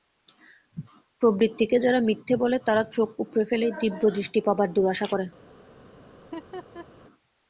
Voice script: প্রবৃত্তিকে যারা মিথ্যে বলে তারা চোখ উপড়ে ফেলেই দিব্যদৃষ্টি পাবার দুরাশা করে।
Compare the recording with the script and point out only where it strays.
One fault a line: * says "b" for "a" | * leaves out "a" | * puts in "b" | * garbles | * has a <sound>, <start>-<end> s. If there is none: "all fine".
* has a laugh, 6.2-6.9 s